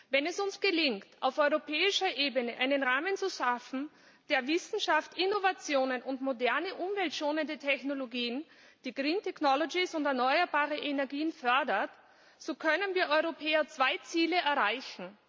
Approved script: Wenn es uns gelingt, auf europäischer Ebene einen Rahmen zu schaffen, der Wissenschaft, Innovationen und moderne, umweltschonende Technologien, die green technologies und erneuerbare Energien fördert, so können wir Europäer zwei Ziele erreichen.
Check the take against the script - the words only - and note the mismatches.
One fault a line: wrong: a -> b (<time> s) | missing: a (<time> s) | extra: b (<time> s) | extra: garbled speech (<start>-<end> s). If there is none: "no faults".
no faults